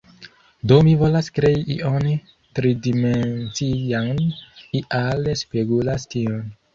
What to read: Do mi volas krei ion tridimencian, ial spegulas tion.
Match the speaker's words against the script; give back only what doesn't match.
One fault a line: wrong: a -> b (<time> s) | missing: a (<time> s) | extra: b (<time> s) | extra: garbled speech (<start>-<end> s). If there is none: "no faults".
no faults